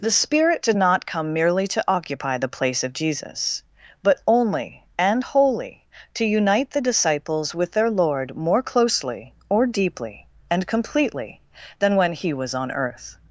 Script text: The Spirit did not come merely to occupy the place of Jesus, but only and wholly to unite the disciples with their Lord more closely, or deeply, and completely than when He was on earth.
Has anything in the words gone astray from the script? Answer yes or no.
no